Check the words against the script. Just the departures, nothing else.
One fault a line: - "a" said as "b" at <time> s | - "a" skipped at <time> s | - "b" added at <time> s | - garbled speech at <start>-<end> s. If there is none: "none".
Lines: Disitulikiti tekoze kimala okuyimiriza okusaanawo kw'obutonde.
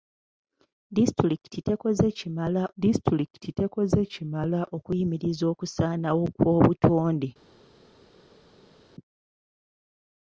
- "disitulikiti tekoze kimala" added at 2.8 s